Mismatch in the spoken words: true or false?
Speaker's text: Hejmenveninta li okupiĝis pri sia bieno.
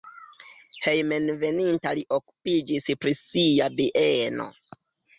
false